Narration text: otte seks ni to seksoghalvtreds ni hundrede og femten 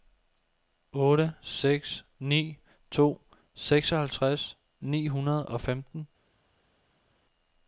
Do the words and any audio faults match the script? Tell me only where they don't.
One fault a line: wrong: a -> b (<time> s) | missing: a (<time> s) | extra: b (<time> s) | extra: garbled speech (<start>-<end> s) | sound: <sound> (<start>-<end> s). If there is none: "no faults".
no faults